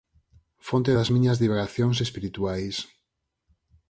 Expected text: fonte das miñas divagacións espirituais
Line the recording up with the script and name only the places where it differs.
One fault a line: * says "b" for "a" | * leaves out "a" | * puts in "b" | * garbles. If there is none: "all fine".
all fine